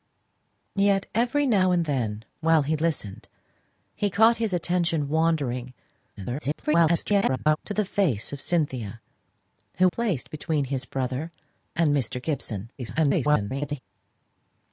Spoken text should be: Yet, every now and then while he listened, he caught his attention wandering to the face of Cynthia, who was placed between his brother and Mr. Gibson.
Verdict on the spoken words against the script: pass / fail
fail